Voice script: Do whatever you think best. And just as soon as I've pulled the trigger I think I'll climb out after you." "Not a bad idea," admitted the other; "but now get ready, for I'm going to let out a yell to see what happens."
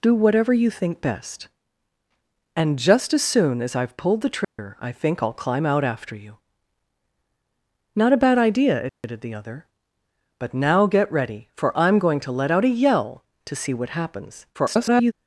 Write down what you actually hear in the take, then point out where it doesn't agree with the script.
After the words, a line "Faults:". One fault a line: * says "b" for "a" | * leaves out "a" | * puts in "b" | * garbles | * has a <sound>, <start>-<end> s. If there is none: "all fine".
Do whatever you think best. And just as soon as I've pulled the trigger I think I'll climb out after you." "Not a bad idea," admitted the other; "but now get ready, for I'm going to let out a yell to see what happens." [garbled]
Faults:
* has a dropout, 4.4-4.6 s
* has a dropout, 8.9-9.0 s
* garbles